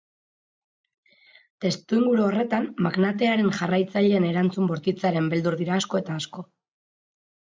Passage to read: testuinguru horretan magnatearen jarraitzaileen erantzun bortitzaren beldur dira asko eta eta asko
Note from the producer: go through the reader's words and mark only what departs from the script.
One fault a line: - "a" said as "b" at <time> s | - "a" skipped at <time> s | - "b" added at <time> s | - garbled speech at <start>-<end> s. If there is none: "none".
- "eta" skipped at 6.2 s